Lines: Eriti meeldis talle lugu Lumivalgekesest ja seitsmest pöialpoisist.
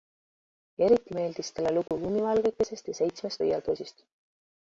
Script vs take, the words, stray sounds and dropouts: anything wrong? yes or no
yes